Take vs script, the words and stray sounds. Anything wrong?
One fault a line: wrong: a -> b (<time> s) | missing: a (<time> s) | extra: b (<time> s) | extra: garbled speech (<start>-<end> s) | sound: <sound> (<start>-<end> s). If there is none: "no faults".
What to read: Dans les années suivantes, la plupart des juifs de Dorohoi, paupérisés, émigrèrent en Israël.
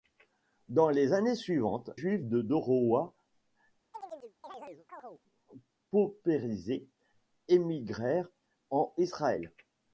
missing: la plupart des (1.9 s)
sound: chirp (3.9-5.2 s)